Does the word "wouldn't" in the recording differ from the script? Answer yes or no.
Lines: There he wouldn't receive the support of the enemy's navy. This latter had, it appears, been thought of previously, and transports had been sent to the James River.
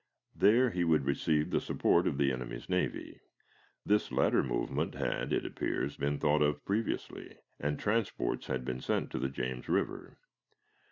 yes